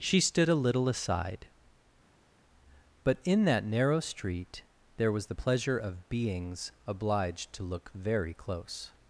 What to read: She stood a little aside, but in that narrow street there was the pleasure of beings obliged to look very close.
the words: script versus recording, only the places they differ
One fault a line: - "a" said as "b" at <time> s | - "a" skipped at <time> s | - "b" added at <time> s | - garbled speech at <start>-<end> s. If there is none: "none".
none